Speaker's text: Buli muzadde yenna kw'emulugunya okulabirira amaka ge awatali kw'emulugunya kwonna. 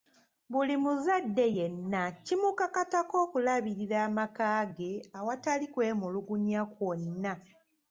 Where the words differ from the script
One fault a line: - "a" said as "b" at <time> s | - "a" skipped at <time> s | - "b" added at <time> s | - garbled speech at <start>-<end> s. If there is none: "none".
- "kw'emulugunya" said as "kimukakatako" at 2.2 s